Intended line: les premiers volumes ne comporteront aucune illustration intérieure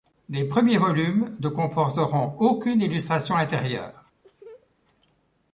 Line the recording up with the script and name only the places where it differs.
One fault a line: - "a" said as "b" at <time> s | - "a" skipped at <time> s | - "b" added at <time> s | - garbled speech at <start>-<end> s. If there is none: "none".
none